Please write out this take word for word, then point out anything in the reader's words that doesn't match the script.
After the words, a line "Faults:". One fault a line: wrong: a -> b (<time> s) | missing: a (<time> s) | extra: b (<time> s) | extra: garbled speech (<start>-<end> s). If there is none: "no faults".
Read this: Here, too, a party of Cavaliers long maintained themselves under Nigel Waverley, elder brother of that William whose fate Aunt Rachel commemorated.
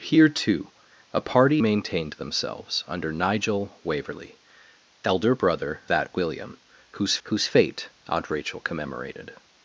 Here, too, a party maintained themselves under Nigel Waverley, elder brother that William whose whose fate Aunt Rachel commemorated.
Faults:
missing: of Cavaliers long (1.6 s)
missing: of (5.8 s)
extra: whose (7.2 s)